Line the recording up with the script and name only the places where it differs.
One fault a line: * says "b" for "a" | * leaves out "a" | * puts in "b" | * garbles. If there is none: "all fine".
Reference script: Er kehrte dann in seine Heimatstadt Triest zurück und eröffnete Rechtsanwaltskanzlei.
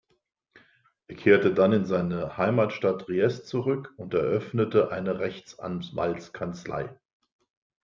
* puts in "eine"